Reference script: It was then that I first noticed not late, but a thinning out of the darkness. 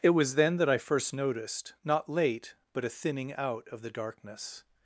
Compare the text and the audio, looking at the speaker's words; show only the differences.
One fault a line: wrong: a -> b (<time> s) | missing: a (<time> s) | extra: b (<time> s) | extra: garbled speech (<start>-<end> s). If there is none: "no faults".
no faults